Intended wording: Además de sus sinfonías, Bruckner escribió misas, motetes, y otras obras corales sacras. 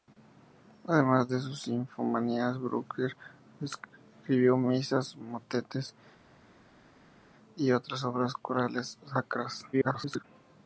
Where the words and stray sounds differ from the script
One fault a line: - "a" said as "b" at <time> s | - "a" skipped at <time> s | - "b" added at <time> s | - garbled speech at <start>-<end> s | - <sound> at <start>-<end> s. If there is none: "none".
- garbled speech at 9.7-10.2 s